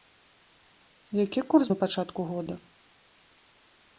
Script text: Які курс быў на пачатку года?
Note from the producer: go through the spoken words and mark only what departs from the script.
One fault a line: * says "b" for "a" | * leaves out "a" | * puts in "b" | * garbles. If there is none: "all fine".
* leaves out "быў"